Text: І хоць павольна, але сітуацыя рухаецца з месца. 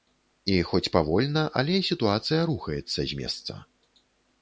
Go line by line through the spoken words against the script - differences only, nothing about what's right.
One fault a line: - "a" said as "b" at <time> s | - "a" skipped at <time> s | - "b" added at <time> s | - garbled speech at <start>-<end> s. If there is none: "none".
none